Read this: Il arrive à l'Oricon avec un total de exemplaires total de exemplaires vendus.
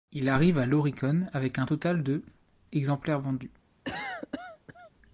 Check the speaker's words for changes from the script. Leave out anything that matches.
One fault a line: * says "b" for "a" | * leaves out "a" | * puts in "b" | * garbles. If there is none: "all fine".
* leaves out "total de exemplaires"